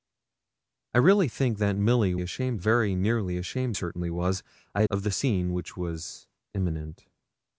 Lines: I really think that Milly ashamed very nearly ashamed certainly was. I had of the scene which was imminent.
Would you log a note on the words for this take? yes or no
no